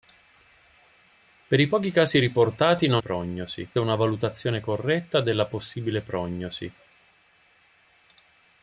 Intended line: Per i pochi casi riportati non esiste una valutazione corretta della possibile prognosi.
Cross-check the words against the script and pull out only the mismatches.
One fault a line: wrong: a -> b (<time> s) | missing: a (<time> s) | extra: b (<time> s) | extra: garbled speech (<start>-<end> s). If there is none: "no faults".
wrong: esiste -> prognosi (3.0 s)